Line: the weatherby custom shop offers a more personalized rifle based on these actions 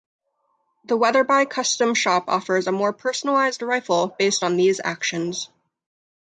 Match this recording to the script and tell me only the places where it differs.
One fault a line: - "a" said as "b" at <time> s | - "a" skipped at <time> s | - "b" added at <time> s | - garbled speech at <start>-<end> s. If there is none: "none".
none